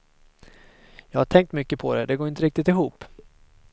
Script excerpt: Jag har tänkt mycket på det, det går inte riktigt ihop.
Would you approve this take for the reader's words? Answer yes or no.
yes